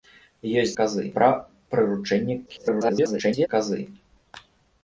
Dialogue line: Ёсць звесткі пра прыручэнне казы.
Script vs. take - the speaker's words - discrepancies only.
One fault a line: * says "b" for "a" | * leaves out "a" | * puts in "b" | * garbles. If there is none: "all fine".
* says "казы" for "звесткі"
* garbles